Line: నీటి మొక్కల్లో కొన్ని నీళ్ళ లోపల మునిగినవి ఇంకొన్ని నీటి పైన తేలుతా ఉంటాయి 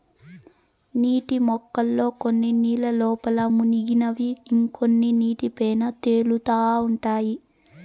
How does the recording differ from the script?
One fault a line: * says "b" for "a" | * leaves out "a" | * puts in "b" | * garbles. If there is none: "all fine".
all fine